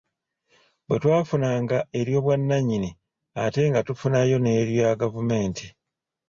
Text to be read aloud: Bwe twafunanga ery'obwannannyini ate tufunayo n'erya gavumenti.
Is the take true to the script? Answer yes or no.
no